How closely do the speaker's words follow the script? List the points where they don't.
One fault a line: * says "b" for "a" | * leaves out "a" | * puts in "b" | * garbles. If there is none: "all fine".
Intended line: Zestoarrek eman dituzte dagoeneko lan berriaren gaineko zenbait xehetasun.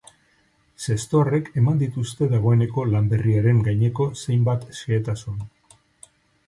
all fine